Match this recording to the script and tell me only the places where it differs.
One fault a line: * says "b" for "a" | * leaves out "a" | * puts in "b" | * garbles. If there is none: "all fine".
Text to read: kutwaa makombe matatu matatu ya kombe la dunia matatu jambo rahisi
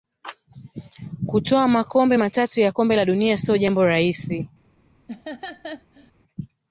* leaves out "matatu"
* says "sio" for "matatu"